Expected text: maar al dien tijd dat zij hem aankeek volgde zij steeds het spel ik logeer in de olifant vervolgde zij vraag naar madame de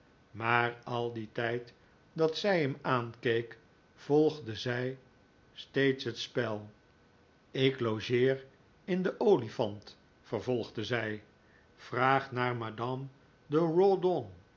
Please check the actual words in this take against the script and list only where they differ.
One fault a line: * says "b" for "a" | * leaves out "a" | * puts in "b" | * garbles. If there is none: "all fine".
all fine